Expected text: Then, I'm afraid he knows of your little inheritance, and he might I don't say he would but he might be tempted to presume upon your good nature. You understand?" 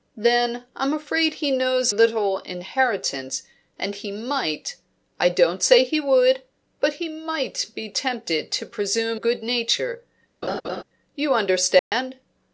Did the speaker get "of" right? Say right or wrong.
wrong